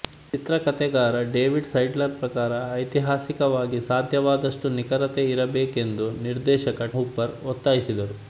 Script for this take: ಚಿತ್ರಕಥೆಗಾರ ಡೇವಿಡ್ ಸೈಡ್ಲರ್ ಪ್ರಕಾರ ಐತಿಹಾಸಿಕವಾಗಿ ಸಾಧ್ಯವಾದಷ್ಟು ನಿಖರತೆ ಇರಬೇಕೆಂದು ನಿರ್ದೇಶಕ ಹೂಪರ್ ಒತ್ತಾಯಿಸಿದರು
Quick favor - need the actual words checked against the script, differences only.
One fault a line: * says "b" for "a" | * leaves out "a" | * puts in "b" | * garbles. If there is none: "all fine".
all fine